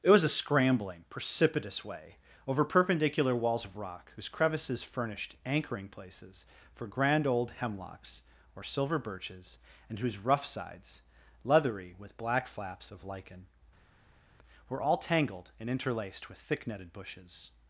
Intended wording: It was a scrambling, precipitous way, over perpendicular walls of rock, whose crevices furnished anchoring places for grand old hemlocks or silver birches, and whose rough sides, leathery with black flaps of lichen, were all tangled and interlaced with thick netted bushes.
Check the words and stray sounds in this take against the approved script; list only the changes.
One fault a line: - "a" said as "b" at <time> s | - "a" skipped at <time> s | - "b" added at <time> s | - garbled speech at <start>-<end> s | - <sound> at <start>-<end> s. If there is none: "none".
none